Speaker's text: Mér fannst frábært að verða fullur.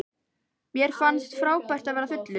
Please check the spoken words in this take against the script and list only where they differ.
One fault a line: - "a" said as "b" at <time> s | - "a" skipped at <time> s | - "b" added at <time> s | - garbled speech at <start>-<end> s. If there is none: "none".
none